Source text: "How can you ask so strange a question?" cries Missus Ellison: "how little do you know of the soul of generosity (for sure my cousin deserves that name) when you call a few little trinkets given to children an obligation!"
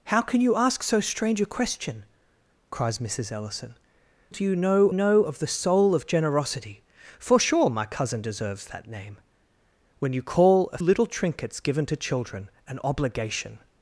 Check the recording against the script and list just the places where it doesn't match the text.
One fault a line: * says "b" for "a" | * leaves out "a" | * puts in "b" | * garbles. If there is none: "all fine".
* leaves out "how little"
* puts in "know"
* leaves out "few"